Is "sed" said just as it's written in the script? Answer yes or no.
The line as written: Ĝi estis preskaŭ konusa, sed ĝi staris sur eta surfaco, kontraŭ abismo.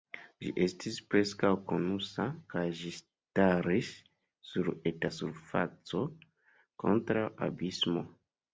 no